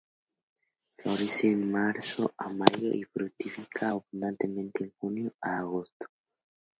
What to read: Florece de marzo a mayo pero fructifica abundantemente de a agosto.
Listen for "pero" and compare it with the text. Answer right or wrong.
wrong